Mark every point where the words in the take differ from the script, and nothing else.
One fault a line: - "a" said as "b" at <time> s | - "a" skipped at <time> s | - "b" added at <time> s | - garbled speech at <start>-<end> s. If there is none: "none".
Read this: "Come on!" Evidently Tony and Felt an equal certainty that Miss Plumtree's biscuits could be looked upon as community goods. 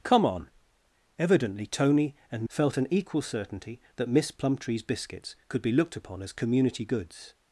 none